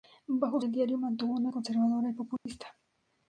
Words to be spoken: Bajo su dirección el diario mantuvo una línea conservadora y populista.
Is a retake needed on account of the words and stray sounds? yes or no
yes